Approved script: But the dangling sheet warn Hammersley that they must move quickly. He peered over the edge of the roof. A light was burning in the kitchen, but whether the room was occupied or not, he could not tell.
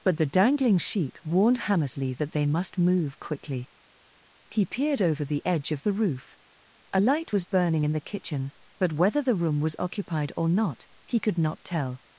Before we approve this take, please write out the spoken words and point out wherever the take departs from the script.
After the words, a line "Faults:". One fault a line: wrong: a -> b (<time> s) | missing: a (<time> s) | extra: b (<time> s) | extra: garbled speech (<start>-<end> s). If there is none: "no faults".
But the dangling sheet warned Hammersley that they must move quickly. He peered over the edge of the roof. A light was burning in the kitchen, but whether the room was occupied or not, he could not tell.
Faults:
wrong: warn -> warned (1.2 s)